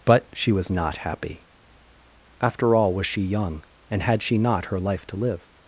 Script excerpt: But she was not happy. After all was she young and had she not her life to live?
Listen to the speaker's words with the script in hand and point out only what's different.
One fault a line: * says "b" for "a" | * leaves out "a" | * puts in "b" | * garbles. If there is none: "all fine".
all fine